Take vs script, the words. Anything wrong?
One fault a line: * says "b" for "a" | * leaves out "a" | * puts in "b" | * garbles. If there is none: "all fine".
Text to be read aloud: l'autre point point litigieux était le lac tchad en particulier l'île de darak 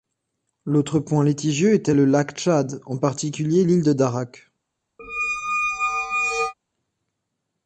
* leaves out "point"